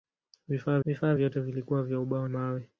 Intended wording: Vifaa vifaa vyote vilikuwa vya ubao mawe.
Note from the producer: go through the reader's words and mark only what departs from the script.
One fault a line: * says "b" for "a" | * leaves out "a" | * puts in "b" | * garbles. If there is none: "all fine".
all fine